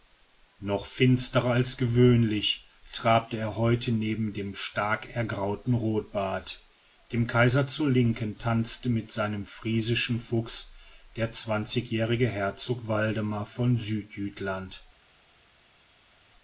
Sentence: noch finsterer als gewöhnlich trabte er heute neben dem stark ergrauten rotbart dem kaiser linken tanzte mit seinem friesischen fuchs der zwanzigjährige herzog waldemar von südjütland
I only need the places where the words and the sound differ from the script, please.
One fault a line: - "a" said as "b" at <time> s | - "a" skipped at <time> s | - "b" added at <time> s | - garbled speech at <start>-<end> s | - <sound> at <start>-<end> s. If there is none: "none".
- "zur" added at 7.7 s